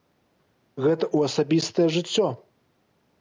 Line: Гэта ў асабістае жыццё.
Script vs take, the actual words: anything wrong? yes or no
no